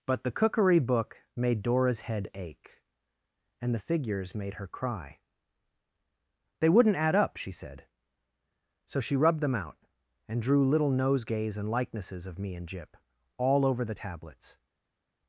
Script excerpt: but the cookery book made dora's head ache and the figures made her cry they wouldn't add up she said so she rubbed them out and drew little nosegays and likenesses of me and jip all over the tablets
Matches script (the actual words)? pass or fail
pass